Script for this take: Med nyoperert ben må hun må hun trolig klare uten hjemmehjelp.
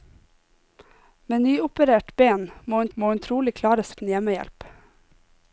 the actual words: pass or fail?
pass